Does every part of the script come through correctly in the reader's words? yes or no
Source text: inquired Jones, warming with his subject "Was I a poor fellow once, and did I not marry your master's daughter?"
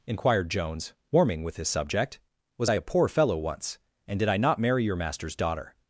yes